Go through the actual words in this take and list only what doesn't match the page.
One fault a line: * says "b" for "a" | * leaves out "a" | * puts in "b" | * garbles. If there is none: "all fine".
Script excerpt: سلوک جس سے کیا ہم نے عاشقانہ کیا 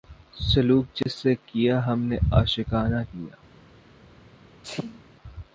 all fine